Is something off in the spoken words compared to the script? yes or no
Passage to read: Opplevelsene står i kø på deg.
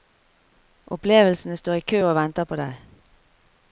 yes